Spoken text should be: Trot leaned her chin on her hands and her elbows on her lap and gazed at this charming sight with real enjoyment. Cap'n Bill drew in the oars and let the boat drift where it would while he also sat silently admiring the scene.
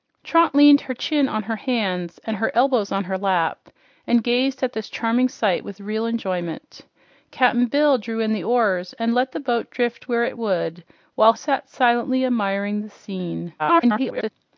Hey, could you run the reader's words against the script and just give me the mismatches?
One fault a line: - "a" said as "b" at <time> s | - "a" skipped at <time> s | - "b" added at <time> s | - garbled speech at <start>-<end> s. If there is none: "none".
- "he also" skipped at 11.3 s
- garbled speech at 13.6-14.3 s